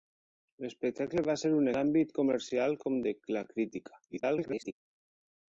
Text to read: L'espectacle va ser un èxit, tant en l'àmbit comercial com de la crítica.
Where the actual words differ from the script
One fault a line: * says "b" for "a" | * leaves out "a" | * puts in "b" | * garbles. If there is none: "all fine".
* leaves out "èxit tant en"
* garbles